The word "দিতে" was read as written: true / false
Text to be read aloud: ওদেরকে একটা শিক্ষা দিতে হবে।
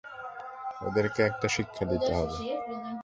true